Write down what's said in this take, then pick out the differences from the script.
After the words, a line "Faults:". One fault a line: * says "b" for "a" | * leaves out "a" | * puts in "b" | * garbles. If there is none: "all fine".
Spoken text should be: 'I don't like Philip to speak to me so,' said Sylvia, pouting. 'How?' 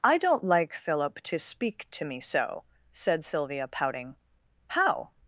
'I don't like Philip to speak to me so,' said Sylvia, pouting. 'How?'
Faults:
all fine